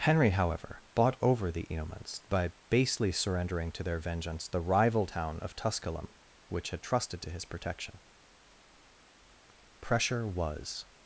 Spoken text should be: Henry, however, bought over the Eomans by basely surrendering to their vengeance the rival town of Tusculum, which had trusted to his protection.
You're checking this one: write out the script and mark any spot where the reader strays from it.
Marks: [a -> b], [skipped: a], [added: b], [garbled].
Henry, however, bought over the Eomans by basely surrendering to their vengeance the rival town of Tusculum, which had trusted to his protection. [added: Pressure was]